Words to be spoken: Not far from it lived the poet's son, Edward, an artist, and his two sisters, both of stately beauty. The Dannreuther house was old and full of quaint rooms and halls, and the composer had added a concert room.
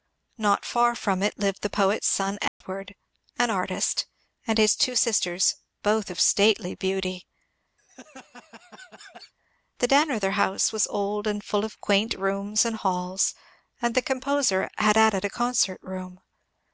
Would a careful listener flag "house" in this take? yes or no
no